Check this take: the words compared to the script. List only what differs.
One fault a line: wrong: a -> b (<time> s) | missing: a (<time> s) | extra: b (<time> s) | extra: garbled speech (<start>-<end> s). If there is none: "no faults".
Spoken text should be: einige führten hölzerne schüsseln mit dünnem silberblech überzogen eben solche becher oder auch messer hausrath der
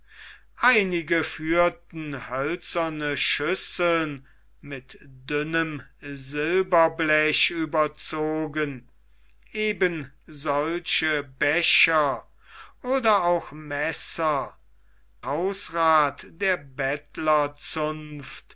no faults